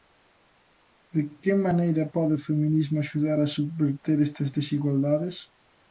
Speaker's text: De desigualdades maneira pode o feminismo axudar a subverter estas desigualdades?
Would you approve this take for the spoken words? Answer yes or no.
no